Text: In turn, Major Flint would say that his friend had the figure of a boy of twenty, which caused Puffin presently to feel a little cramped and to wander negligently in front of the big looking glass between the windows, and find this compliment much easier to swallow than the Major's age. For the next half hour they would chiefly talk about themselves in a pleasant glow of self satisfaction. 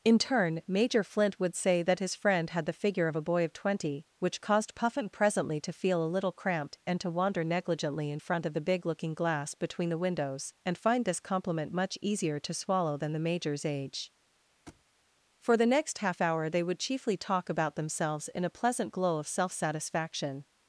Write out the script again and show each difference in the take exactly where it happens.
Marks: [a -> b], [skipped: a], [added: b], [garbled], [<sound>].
In turn, Major Flint would say that his friend had the figure of a boy of twenty, which caused Puffin presently to feel a little cramped and to wander negligently in front of the big looking glass between the windows, and find this compliment much easier to swallow than the Major's age. [thud] For the next half hour they would chiefly talk about themselves in a pleasant glow of self satisfaction.